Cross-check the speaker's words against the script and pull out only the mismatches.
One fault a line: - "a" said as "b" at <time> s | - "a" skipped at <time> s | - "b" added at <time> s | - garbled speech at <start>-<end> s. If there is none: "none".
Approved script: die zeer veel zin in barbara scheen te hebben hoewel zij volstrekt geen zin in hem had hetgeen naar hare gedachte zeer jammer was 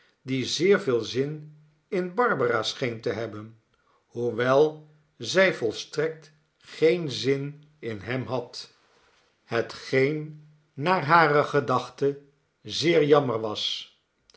none